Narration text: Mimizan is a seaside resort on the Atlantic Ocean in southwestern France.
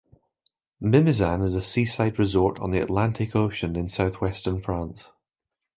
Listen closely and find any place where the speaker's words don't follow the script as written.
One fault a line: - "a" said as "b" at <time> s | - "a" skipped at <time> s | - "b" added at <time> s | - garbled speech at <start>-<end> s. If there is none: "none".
none